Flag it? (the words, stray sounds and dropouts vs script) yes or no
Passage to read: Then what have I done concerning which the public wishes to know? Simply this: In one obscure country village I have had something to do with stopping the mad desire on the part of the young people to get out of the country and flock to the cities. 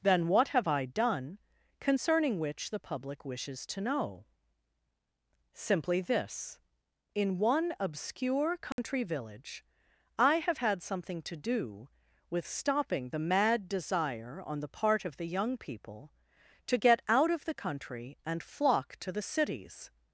yes